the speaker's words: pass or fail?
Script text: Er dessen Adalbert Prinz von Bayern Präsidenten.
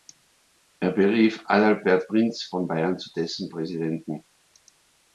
fail